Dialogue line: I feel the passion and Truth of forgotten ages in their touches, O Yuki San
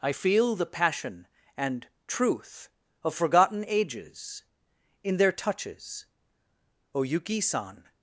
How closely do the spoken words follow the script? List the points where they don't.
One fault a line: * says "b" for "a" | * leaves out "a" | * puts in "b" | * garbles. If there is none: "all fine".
all fine